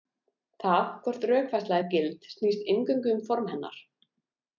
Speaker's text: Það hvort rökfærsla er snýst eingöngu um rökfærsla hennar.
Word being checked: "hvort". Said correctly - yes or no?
yes